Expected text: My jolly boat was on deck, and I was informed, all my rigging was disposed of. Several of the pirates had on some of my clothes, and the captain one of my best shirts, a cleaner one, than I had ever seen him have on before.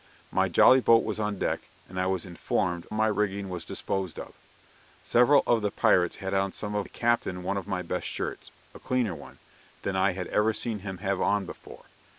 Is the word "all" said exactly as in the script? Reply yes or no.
no